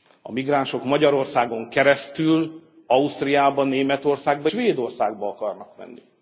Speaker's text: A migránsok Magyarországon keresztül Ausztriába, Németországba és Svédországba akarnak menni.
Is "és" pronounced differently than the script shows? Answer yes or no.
yes